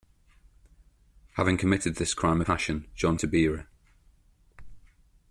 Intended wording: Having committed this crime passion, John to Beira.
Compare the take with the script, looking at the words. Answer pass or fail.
pass